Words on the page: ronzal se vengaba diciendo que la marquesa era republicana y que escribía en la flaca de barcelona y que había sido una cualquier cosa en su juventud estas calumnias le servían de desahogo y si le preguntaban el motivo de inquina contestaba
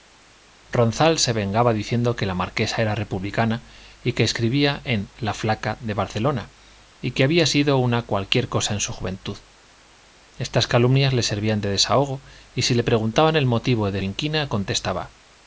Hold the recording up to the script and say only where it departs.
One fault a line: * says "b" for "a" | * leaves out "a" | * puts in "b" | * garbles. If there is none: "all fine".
all fine